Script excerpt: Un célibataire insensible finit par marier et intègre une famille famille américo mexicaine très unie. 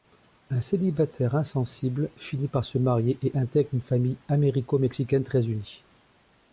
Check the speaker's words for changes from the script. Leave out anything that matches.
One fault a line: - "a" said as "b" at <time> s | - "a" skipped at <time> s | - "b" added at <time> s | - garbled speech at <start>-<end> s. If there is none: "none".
- "se" added at 2.6 s
- "famille" skipped at 4.2 s